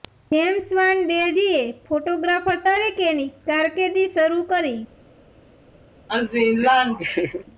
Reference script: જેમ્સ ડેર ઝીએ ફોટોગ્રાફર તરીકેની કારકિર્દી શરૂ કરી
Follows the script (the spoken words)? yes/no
no